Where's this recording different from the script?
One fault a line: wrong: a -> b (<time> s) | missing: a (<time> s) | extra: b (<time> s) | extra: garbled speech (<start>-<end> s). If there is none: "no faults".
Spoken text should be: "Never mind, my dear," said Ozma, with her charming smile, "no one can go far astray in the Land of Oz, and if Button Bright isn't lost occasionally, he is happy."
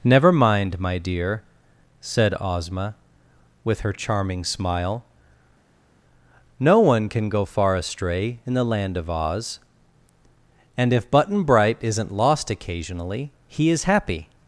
no faults